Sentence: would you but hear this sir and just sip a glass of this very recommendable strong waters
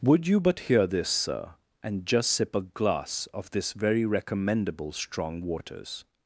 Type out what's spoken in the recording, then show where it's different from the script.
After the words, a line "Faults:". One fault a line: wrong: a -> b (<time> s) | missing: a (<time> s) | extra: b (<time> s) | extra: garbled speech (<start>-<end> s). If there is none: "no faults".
would you but hear this sir and just sip a glass of this very recommendable strong waters
Faults:
no faults